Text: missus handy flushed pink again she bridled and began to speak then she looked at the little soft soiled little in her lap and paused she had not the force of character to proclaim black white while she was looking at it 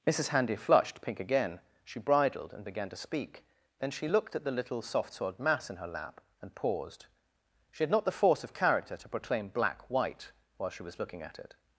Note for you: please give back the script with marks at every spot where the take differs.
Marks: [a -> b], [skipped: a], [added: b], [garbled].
missus handy flushed pink again she bridled and began to speak then she looked at the little soft soiled [little -> mass] in her lap and paused she had not the force of character to proclaim black white while she was looking at it